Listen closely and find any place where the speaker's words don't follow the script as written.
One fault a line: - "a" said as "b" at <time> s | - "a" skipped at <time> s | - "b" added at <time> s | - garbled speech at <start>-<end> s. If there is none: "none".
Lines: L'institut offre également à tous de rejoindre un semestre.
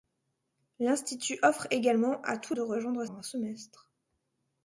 none